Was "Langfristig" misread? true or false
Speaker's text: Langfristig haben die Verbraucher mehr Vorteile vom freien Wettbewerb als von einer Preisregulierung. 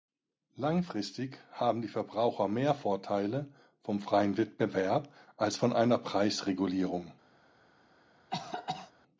false